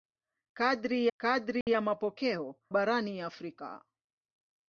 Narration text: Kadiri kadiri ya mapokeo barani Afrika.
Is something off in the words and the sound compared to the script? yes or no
yes